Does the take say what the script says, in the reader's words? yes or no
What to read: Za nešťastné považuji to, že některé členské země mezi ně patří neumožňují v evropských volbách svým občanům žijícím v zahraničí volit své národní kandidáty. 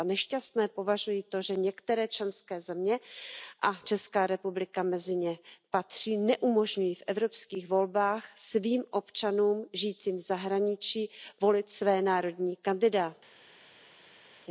no